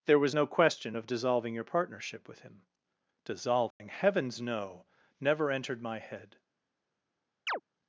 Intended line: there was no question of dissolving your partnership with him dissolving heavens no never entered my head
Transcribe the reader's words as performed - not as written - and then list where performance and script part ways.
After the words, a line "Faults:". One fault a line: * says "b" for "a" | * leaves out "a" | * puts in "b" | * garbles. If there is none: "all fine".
there was no question of dissolving your partnership with him dissolving heavens no never entered my head
Faults:
all fine